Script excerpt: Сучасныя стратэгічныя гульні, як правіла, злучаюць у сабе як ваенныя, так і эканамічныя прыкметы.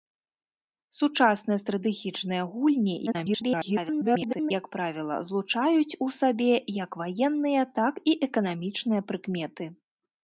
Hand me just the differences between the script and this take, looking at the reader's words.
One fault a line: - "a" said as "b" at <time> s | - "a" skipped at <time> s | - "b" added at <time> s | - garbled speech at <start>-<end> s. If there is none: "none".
- garbled speech at 3.1-4.5 s